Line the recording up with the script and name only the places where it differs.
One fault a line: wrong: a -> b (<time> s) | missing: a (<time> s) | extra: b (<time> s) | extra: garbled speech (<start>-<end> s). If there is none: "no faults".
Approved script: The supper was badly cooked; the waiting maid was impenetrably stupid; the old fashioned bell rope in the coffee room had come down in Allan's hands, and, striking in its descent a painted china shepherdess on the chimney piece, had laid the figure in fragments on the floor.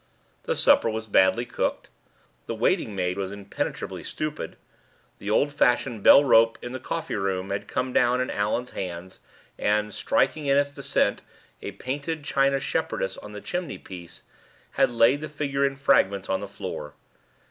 no faults